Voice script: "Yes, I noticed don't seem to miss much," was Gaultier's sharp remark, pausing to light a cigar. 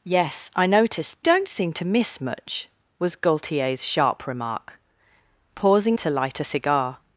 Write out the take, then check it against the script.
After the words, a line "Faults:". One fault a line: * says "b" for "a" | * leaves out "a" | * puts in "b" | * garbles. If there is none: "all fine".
"Yes, I noticed don't seem to miss much," was Gaultier's sharp remark, pausing to light a cigar.
Faults:
all fine